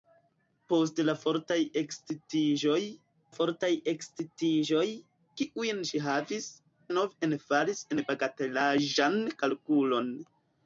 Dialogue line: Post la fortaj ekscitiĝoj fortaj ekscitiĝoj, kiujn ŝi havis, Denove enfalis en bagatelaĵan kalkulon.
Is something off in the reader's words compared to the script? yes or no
no